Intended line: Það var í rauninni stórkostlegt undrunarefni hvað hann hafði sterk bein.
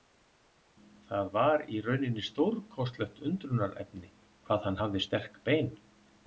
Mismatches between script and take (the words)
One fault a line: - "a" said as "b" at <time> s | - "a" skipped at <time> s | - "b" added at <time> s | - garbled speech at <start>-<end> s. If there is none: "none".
none